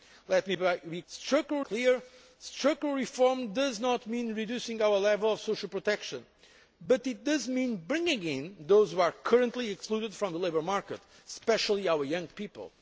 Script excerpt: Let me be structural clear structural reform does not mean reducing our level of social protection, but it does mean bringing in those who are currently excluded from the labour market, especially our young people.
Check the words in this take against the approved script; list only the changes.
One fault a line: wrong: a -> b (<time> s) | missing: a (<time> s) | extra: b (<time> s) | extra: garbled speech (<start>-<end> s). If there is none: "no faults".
no faults